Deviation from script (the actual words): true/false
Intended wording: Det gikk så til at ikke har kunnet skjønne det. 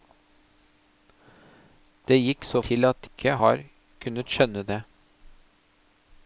false